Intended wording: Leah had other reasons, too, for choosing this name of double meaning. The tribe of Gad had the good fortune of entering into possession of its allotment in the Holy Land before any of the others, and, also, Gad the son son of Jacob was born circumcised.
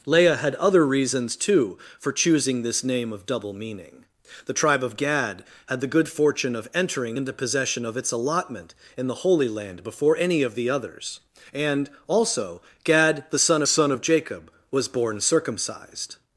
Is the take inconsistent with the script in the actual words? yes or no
no